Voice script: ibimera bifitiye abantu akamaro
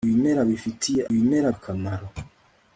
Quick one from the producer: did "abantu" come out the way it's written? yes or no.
no